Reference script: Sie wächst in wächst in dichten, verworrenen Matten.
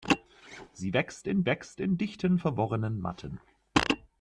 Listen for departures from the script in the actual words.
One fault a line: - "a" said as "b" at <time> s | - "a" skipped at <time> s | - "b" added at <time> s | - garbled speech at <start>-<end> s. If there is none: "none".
none